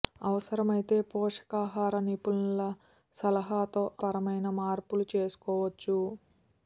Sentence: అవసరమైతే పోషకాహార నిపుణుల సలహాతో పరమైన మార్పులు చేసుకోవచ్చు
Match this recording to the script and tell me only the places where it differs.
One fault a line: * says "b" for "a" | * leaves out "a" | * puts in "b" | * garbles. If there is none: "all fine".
all fine